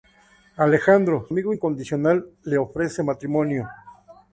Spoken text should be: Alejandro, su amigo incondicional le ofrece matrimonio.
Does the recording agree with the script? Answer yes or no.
no